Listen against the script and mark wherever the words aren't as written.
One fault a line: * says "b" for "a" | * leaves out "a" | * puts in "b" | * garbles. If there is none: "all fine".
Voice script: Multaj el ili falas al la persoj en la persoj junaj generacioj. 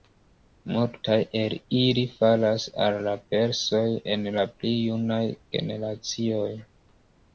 * says "pli" for "persoj"